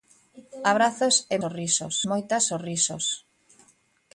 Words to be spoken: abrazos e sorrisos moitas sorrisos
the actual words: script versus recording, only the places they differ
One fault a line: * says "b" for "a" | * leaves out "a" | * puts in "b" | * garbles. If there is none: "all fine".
all fine